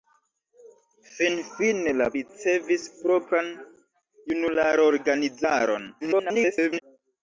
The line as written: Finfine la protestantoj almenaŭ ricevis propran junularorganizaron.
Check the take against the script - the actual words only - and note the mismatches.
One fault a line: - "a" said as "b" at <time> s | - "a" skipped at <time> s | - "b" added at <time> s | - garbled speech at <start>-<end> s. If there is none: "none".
- "protestantoj almenaŭ" skipped at 2.1 s
- garbled speech at 6.0-6.8 s